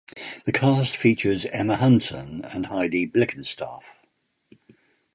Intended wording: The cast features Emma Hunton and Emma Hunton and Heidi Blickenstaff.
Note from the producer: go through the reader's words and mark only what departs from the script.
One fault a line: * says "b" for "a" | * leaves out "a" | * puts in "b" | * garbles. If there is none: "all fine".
* leaves out "Emma Hunton and"